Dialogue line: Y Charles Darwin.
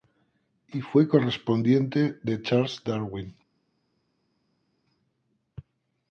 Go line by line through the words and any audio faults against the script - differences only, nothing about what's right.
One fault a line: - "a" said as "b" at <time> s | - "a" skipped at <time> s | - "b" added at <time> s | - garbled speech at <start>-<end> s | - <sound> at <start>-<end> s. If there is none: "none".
- "fue correspondiente de" added at 0.8 s